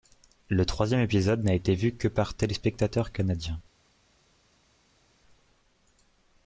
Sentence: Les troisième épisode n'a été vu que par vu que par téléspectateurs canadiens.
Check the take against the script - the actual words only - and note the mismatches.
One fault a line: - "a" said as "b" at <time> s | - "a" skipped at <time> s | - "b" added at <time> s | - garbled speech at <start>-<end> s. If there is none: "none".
- "Les" said as "Le" at 0.5 s
- "vu que par" skipped at 2.3 s